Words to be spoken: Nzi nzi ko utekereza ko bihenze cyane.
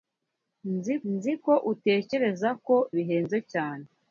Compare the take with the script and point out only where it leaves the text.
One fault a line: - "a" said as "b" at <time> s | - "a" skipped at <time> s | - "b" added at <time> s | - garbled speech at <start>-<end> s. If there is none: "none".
none